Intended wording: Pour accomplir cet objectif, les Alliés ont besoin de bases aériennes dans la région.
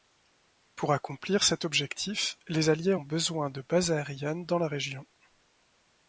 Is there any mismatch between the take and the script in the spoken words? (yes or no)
no